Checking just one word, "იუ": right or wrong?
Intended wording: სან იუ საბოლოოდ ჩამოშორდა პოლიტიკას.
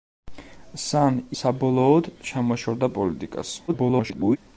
wrong